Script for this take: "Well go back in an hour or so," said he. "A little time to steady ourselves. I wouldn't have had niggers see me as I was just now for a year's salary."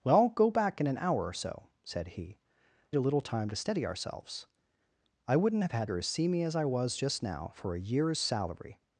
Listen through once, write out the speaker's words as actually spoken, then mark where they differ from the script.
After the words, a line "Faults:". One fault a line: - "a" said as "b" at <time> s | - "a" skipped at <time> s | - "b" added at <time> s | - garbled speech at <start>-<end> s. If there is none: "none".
"Well go back in an hour or so," said he. "A little time to steady ourselves. I wouldn't have had niggers see me as I was just now for a year's salary."
Faults:
none